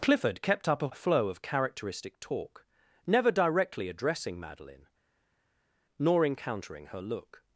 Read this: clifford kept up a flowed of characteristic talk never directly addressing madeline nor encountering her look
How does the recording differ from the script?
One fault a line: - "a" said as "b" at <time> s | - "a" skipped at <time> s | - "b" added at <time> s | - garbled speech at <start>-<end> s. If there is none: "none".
- "flowed" said as "flow" at 0.9 s